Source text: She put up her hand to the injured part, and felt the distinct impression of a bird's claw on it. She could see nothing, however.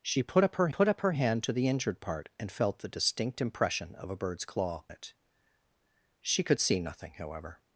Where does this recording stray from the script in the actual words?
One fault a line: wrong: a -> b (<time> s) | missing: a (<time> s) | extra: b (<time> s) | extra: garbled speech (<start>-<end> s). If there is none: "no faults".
extra: put up her (0.7 s)
missing: on (4.9 s)